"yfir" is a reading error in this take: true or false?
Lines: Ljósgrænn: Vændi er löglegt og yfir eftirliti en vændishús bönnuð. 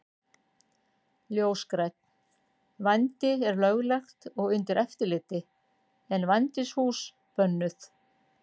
true